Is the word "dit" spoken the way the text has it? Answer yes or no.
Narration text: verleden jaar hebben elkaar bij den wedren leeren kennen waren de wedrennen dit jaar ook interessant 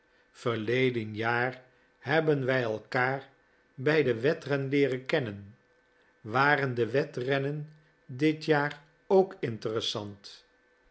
yes